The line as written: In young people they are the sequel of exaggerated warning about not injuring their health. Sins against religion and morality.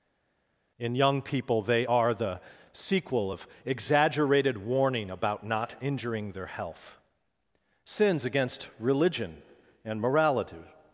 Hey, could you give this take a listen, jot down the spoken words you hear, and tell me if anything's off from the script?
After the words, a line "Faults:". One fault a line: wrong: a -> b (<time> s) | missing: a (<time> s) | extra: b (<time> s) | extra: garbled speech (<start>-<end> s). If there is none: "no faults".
In young people they are the sequel of exaggerated warning about not injuring their health. Sins against religion and morality.
Faults:
no faults